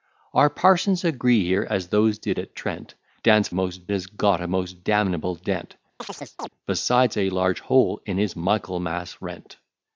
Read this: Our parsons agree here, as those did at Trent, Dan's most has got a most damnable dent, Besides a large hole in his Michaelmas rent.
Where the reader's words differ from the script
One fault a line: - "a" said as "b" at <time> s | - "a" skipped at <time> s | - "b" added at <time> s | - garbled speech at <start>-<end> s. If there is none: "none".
none